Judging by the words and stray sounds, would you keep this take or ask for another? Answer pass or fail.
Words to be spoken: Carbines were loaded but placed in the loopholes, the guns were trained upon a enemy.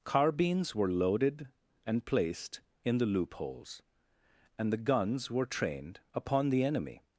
fail